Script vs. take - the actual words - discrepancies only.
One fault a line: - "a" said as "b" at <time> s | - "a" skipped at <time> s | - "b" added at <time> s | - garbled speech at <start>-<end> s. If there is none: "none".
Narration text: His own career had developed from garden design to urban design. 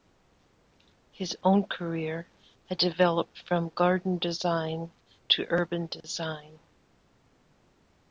none